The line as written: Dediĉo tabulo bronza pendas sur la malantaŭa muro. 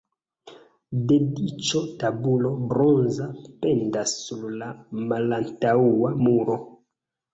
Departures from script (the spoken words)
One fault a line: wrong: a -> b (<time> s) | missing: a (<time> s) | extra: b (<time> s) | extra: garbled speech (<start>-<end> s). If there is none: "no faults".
no faults